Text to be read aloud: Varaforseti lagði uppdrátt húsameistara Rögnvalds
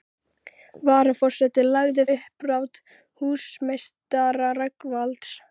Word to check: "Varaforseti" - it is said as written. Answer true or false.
true